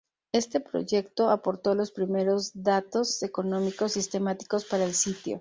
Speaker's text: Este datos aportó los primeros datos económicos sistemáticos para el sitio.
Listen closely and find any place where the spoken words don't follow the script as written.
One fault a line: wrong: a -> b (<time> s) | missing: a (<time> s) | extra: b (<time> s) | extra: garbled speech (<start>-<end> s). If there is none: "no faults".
wrong: datos -> proyecto (0.6 s)